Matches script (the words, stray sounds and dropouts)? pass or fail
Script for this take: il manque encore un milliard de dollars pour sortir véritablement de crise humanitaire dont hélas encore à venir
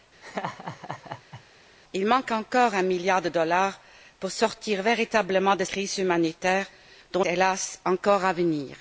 fail